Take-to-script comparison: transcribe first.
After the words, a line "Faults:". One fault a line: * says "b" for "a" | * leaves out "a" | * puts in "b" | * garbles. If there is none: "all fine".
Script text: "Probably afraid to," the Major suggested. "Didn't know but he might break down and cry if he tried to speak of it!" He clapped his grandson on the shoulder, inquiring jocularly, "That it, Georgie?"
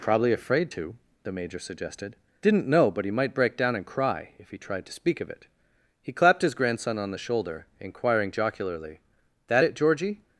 "Probably afraid to," the Major suggested. "Didn't know but he might break down and cry if he tried to speak of it!" He clapped his grandson on the shoulder, inquiring jocularly, "That it, Georgie?"
Faults:
all fine